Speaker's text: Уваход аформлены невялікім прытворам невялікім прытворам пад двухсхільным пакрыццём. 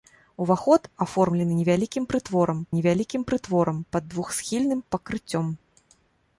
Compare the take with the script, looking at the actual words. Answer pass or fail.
pass